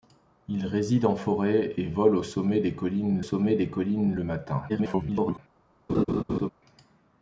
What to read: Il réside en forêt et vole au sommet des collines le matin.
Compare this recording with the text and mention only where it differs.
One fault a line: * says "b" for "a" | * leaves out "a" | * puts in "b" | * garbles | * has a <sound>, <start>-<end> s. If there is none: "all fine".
* puts in "sommet des collines"
* garbles
* has a laugh, 5.9-6.5 s